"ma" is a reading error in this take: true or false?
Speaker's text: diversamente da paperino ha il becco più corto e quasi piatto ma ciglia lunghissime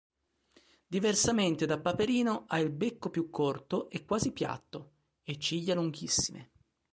true